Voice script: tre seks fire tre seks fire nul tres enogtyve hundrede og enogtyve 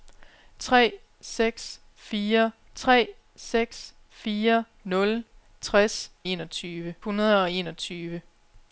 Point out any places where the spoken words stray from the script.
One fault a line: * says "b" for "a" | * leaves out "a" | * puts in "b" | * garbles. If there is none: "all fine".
all fine